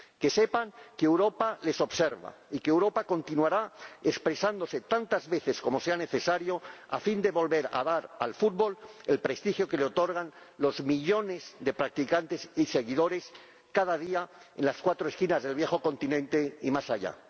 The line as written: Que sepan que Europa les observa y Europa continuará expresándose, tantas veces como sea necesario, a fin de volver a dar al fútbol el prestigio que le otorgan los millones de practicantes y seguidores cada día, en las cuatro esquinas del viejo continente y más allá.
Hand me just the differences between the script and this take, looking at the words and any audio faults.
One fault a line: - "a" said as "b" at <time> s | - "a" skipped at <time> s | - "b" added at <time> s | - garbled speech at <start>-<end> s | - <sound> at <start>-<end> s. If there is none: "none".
- "que" added at 2.6 s